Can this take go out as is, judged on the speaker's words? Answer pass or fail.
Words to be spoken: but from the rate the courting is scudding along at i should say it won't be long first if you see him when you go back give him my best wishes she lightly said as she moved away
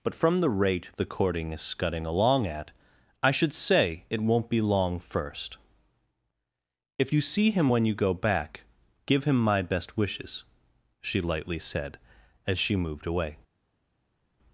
pass